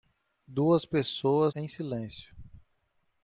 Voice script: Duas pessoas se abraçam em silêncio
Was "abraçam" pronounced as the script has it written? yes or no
no